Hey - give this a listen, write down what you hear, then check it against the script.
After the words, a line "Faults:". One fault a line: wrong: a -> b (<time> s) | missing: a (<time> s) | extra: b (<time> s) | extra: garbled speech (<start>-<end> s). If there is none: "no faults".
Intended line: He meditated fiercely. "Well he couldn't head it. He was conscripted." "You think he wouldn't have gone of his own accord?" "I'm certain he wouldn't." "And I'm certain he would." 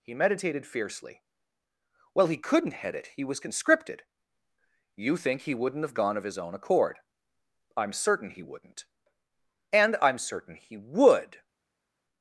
He meditated fiercely. "Well he couldn't head it. He was conscripted." "You think he wouldn't have gone of his own accord?" "I'm certain he wouldn't." "And I'm certain he would."
Faults:
no faults